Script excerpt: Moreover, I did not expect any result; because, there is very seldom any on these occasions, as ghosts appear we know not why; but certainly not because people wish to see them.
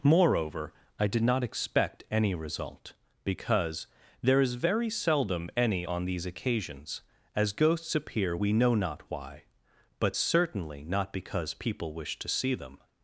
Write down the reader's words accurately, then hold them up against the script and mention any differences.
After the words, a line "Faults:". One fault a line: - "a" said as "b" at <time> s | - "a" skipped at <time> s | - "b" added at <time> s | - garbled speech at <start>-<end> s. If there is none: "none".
Moreover, I did not expect any result; because, there is very seldom any on these occasions, as ghosts appear we know not why; but certainly not because people wish to see them.
Faults:
none